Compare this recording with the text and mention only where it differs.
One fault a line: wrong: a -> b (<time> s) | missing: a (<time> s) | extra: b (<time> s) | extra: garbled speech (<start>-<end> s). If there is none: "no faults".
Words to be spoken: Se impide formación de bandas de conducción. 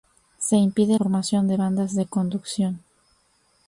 no faults